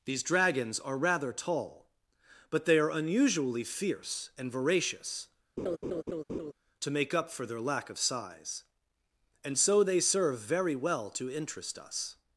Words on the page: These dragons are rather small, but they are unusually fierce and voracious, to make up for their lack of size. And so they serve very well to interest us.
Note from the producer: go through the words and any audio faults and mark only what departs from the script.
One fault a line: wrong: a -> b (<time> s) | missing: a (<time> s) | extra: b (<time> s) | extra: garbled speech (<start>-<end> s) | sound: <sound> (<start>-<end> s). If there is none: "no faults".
wrong: small -> tall (1.3 s)
sound: laugh (5.6-6.5 s)